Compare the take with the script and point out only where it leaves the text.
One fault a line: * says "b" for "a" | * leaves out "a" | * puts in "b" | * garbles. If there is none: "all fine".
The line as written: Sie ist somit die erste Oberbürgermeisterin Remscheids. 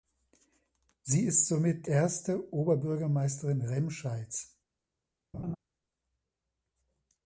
* leaves out "die"